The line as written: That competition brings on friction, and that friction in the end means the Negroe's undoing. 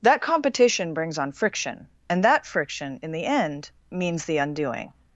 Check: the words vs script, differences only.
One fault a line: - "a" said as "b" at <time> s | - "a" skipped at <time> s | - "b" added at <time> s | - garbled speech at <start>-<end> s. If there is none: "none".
- "Negroe's" skipped at 4.4 s